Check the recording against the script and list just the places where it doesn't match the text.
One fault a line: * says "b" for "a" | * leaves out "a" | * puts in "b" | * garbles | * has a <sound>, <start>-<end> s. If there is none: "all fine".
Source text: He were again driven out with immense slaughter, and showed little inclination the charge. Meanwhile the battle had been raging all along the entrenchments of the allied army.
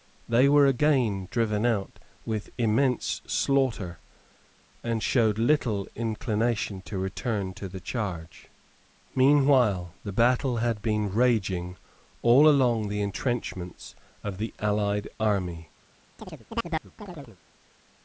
* says "They" for "He"
* puts in "to return to"
* has a chirp, 16.2-17.4 s